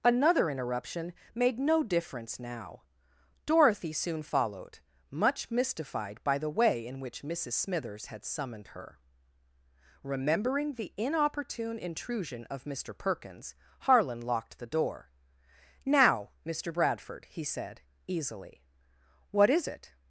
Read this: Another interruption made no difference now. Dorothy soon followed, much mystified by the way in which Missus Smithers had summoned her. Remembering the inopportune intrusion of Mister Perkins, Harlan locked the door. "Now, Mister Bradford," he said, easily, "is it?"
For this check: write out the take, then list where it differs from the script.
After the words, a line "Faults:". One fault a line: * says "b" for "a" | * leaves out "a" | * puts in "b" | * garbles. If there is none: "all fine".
Another interruption made no difference now. Dorothy soon followed, much mystified by the way in which Missus Smithers had summoned her. Remembering the inopportune intrusion of Mister Perkins, Harlan locked the door. "Now, Mister Bradford," he said, easily, "what is it?"
Faults:
* puts in "what"